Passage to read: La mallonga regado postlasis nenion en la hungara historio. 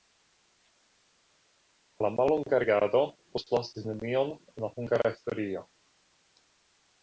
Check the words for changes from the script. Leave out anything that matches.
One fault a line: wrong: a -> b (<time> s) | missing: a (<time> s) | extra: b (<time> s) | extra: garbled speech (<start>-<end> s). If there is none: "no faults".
no faults